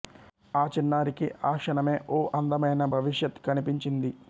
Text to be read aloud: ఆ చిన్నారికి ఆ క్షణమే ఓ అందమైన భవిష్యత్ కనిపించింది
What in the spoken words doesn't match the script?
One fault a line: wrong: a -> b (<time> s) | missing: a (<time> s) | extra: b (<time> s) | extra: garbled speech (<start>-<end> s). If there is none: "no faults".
no faults